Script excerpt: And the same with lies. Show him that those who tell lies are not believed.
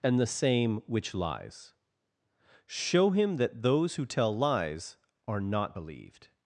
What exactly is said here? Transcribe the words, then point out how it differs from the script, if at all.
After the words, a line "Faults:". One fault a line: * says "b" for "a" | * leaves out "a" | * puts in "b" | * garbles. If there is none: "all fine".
And the same which lies. Show him that those who tell lies are not believed.
Faults:
* says "which" for "with"